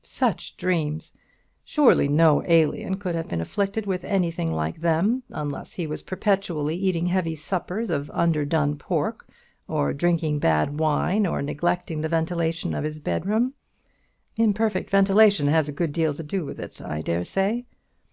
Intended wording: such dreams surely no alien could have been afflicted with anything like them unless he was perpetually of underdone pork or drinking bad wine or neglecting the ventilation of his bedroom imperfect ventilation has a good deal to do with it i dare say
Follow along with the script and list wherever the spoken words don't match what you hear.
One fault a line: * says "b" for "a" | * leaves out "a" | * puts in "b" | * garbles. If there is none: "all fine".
* puts in "eating heavy suppers"